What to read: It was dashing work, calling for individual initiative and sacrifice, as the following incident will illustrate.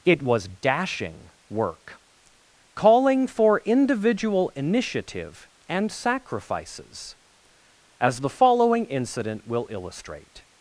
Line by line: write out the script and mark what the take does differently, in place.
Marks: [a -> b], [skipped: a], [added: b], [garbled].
It was dashing work, calling for individual initiative and [sacrifice, -> sacrifices] as the following incident will illustrate.